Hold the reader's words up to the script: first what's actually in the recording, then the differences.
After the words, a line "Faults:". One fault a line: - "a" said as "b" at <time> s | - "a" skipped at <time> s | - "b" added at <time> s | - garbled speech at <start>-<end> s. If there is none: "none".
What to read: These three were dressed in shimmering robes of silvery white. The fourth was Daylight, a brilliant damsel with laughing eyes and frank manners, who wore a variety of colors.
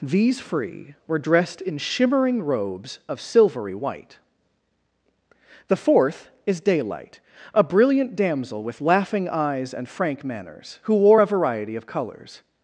These free were dressed in shimmering robes of silvery white. The fourth is Daylight, a brilliant damsel with laughing eyes and frank manners, who wore a variety of colors.
Faults:
- "three" said as "free" at 0.4 s
- "was" said as "is" at 6.5 s